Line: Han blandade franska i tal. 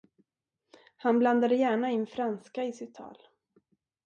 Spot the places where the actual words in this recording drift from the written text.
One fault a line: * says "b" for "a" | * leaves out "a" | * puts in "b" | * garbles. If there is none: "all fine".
* puts in "gärna in"
* puts in "sitt"